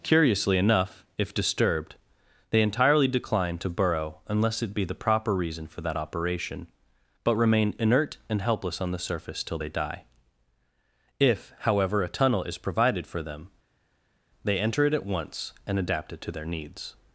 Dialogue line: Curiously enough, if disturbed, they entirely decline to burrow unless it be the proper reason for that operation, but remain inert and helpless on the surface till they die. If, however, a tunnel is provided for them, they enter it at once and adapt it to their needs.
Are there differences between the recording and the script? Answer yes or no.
no